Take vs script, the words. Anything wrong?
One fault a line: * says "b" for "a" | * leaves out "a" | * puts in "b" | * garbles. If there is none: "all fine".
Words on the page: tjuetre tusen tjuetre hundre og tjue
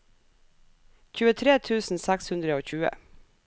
* says "seks" for "tjuetre"